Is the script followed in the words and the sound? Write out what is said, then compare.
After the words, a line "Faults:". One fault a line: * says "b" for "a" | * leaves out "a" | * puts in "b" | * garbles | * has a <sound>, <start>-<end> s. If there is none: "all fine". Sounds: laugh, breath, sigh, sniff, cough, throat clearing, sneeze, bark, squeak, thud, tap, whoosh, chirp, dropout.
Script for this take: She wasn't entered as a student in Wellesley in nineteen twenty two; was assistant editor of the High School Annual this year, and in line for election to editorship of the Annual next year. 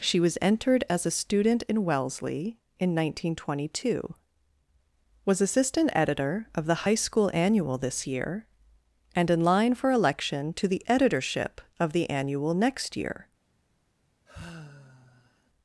She was entered as a student in Wellesley in nineteen twenty two; was assistant editor of the High School Annual this year, and in line for election to the editorship of the Annual next year.
Faults:
* says "was" for "wasn't"
* puts in "the"
* has a sigh, 14.3-15.5 s